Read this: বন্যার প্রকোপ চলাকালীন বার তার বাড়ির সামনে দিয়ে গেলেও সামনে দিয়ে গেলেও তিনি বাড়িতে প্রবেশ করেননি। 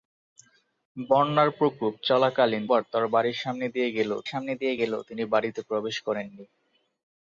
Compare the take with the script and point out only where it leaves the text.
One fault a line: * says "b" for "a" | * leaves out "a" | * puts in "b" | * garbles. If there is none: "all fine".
all fine